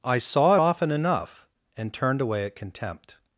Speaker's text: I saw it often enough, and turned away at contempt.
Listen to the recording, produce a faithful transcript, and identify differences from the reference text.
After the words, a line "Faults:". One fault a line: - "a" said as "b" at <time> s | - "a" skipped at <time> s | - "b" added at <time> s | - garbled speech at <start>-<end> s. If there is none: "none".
I saw it often enough, and turned away at contempt.
Faults:
none